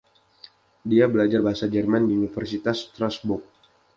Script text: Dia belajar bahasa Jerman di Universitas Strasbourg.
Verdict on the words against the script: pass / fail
fail